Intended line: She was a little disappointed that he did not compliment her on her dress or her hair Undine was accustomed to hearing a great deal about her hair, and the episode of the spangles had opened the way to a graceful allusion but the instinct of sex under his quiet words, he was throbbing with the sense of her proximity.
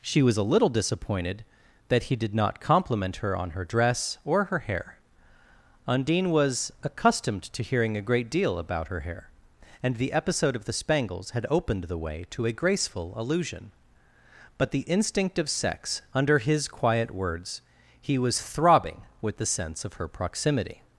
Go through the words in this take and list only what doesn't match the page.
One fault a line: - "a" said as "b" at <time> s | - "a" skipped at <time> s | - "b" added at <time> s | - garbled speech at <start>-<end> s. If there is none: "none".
none